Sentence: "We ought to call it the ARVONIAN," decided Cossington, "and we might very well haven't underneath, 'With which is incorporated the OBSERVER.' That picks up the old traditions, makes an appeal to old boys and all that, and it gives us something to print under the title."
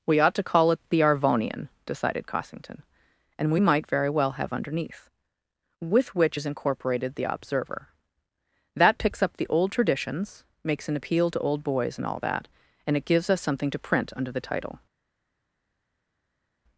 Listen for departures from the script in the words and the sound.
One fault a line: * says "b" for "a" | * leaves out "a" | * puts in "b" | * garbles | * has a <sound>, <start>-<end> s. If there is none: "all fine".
* says "have" for "haven't"